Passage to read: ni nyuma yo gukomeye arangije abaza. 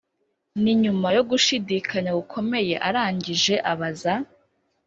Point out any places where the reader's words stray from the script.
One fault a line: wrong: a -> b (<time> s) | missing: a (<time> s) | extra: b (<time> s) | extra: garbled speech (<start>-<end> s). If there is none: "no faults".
extra: gushidikanya (1.3 s)